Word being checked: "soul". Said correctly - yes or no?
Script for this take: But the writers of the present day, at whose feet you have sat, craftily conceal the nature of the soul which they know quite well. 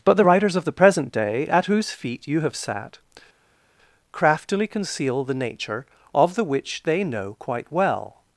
no